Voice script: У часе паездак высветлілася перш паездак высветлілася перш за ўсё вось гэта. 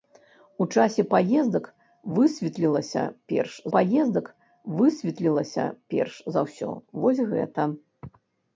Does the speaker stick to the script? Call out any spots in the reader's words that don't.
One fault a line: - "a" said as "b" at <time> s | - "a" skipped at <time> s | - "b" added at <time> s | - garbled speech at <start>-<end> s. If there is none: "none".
none